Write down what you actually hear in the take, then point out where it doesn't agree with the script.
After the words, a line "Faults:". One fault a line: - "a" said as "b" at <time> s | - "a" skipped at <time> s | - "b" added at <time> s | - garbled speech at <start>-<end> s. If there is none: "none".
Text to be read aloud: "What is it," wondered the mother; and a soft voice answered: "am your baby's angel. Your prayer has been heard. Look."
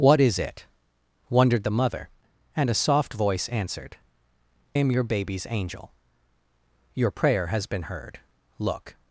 "What is it," wondered the mother; and a soft voice answered: "am your baby's angel. Your prayer has been heard. Look."
Faults:
none